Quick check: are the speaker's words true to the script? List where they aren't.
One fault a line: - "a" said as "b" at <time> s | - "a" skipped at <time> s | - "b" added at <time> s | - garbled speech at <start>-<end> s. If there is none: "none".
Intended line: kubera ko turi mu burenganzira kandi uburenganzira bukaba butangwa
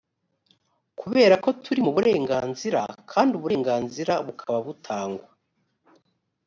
none